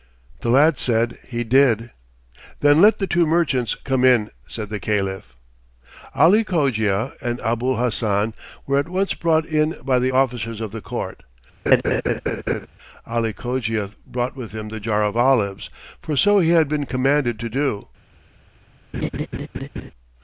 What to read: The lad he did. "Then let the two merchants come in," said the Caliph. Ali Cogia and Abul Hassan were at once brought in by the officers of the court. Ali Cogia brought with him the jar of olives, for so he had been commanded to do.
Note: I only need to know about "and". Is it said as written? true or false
true